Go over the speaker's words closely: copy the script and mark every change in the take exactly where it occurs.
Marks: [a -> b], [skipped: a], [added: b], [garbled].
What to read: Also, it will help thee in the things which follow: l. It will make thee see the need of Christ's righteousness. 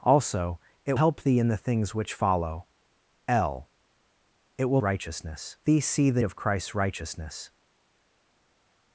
Also, it [skipped: will] help thee in the things which follow: l. It will [make -> righteousness] thee see the [skipped: need] of Christ's righteousness.